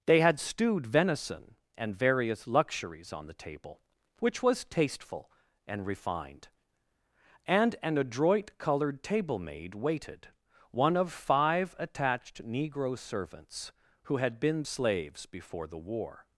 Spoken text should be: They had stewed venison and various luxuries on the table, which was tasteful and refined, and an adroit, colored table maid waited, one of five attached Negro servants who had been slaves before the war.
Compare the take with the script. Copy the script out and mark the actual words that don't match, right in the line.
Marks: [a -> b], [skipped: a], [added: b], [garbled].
They had stewed venison and various luxuries on the table, which was tasteful and refined, and an adroit, colored table maid waited, one of five attached Negro servants who had been slaves before the war.